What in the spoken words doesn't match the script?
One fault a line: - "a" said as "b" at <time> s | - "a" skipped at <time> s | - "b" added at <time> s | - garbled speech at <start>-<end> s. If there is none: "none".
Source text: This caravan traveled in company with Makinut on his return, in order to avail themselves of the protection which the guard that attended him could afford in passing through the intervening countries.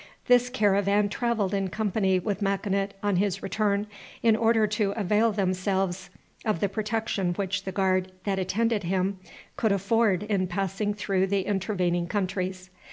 none